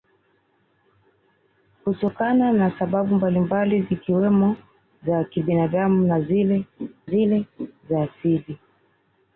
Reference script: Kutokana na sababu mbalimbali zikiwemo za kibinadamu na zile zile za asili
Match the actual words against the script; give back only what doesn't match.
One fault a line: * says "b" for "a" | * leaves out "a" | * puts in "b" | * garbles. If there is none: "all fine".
all fine